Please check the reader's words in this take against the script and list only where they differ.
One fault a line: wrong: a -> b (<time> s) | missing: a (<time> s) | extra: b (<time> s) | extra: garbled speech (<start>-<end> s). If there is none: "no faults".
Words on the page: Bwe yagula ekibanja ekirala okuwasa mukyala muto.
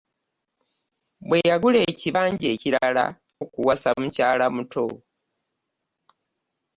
no faults